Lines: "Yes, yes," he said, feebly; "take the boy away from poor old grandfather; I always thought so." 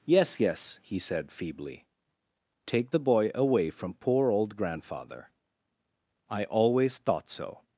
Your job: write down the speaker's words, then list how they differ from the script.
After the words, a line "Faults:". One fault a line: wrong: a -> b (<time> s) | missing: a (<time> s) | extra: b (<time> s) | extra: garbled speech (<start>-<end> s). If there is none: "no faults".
"Yes, yes," he said, feebly; "take the boy away from poor old grandfather; I always thought so."
Faults:
no faults